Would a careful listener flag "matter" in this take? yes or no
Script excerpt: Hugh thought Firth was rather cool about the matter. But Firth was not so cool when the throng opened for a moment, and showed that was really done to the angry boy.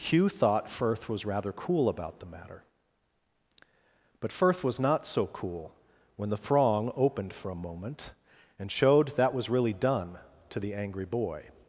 no